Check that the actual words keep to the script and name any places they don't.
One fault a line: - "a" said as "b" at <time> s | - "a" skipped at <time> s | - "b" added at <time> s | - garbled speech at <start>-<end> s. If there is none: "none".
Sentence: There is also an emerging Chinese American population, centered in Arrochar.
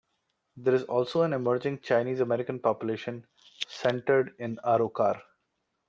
none